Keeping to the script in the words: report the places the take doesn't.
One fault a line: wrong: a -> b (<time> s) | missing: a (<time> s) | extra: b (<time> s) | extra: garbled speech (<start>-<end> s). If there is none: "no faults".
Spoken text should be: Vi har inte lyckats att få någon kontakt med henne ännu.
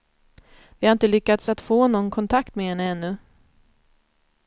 no faults